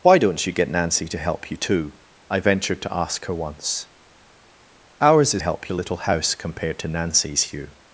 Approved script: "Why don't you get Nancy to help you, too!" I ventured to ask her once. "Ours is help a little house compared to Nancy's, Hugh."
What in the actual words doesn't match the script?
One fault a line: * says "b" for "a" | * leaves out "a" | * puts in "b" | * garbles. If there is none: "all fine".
all fine